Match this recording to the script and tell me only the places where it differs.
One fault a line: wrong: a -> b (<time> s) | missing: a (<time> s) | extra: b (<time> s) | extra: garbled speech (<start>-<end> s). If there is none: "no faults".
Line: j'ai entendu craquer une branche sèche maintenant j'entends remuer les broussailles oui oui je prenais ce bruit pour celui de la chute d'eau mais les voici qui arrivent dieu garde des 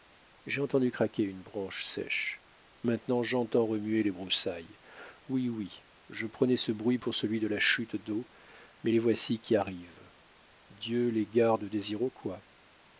extra: les (11.1 s)